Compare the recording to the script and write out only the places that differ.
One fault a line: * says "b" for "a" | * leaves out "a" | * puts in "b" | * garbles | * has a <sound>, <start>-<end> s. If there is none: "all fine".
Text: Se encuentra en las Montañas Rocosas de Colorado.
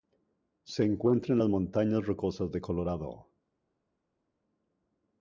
all fine